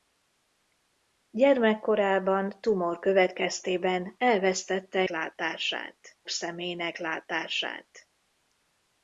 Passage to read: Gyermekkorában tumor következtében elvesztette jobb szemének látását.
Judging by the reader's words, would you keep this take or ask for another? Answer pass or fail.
fail